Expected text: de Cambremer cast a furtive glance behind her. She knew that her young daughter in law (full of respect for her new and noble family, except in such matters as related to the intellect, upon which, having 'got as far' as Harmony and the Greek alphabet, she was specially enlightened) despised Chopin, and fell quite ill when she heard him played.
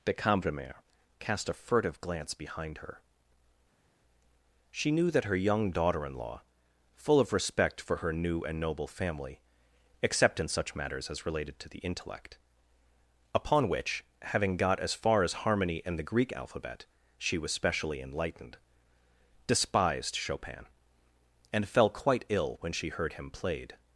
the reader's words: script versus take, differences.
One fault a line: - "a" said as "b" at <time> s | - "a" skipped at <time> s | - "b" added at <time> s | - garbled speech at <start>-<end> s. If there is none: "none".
none